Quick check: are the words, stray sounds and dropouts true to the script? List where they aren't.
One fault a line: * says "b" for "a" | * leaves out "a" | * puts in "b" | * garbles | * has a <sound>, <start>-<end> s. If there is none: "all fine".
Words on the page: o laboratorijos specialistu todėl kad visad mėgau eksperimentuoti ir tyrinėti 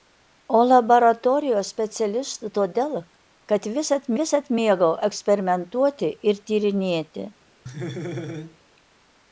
* puts in "visad"
* has a laugh, 7.7-8.6 s